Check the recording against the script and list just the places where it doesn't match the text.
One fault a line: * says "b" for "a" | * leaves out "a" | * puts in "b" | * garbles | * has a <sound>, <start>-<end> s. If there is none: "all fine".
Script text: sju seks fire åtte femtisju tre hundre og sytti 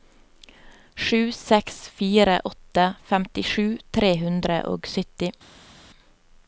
all fine